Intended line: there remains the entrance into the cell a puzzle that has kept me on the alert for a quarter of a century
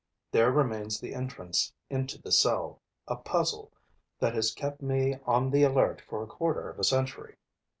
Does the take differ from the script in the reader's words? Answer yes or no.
no